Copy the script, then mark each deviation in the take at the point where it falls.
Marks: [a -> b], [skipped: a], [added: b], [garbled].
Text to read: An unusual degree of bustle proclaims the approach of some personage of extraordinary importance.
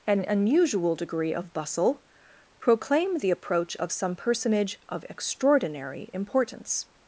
An unusual degree of bustle [proclaims -> proclaim] the approach of some personage of extraordinary importance.